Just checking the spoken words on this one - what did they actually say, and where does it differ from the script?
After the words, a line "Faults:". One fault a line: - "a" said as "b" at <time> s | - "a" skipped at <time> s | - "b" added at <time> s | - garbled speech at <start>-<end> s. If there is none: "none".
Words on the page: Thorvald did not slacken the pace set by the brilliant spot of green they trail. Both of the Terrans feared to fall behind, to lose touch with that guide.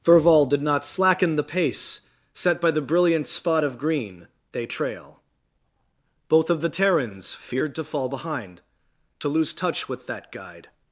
Thorvald did not slacken the pace set by the brilliant spot of green they trail. Both of the Terrans feared to fall behind, to lose touch with that guide.
Faults:
none